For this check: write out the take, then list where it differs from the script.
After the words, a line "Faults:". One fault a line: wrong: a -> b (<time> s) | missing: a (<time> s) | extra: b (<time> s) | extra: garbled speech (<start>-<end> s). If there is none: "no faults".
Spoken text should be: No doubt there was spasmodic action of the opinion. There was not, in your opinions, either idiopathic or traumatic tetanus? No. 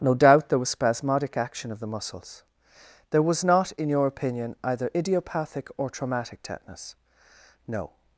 No doubt there was spasmodic action of the muscles. There was not, in your opinion, either idiopathic or traumatic tetanus? No.
Faults:
wrong: opinion -> muscles (1.9 s)
wrong: opinions -> opinion (4.1 s)